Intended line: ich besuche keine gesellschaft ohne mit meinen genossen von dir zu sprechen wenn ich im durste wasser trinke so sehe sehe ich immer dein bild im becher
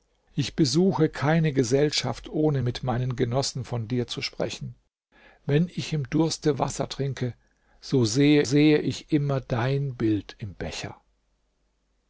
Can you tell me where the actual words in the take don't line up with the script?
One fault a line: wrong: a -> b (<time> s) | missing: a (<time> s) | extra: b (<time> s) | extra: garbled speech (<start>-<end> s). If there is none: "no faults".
no faults